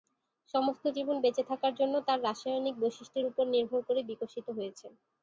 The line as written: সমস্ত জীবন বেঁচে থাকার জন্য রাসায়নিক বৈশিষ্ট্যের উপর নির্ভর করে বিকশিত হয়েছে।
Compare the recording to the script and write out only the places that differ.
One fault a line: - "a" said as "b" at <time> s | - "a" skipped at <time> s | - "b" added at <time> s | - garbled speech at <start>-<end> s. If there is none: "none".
- "তার" added at 2.1 s